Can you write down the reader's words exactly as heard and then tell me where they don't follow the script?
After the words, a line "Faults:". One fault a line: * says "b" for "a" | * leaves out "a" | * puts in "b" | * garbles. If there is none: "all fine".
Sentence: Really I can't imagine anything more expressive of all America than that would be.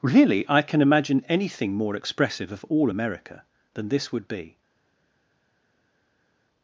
Really I can imagine anything more expressive of all America than this would be.
Faults:
* says "can" for "can't"
* says "this" for "that"